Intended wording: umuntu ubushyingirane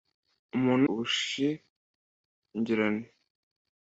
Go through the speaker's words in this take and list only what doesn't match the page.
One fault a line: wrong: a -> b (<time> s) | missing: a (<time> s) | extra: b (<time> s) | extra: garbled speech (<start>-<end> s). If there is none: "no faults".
no faults